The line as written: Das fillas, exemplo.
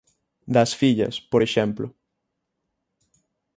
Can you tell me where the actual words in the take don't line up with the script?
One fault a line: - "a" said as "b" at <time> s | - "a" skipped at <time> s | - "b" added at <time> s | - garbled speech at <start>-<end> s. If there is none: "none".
- "por" added at 1.2 s